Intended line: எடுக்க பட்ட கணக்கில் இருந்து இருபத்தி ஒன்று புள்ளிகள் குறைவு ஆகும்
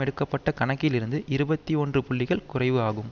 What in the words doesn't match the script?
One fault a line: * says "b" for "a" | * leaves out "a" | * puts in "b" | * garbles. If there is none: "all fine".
all fine